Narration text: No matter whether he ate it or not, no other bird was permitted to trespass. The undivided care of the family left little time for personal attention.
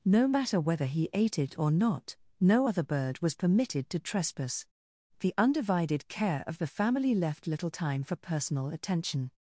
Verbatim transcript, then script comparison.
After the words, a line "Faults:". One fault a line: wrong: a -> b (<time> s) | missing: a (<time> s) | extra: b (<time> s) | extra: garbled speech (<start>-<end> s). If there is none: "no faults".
No matter whether he ate it or not, no other bird was permitted to trespass. The undivided care of the family left little time for personal attention.
Faults:
no faults